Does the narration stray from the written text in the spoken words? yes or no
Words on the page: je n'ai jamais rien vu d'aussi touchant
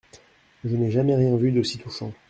no